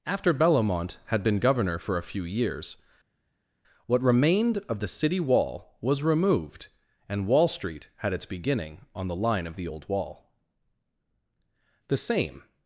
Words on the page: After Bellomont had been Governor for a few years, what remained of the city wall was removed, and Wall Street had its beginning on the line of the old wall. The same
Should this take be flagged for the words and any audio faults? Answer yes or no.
no